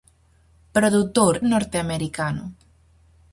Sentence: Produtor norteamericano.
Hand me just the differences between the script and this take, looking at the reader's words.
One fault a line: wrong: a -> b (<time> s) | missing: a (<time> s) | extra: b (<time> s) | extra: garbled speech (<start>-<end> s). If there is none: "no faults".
no faults